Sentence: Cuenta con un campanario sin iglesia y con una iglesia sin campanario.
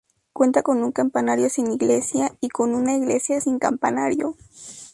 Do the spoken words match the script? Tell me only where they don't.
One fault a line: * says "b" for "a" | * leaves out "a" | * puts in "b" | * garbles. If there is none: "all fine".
all fine